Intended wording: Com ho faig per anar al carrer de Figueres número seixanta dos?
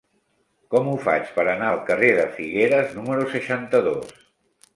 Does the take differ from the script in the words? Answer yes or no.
no